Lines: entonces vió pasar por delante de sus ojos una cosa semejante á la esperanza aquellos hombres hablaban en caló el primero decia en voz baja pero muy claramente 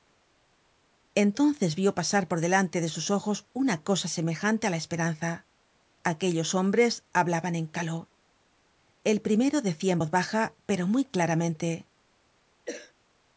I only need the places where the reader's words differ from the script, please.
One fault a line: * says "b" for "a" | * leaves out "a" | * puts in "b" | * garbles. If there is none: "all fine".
all fine